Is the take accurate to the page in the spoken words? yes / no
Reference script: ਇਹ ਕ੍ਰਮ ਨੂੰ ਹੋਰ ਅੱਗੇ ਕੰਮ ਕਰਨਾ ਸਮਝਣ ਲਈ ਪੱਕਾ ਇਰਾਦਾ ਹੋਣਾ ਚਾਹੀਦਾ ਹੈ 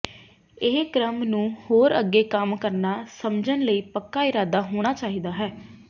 yes